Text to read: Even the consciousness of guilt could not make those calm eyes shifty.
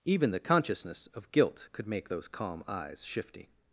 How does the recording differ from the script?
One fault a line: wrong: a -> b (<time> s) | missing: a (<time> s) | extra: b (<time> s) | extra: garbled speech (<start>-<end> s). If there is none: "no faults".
missing: not (1.9 s)